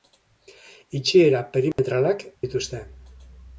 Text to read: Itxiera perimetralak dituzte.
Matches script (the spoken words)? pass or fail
pass